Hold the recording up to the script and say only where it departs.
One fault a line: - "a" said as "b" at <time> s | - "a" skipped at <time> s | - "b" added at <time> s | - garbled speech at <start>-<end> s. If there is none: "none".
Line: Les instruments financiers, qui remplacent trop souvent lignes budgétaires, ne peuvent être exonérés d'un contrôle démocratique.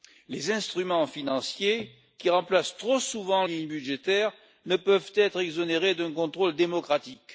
none